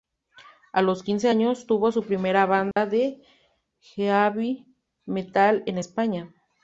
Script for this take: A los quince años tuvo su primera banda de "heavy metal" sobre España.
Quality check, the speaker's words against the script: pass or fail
fail